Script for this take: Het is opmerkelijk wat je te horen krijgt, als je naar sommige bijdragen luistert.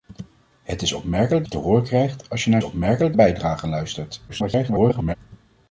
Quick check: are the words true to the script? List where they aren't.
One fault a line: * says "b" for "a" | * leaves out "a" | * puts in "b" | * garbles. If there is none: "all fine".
* leaves out "wat"
* says "opmerkelijk" for "sommige"
* garbles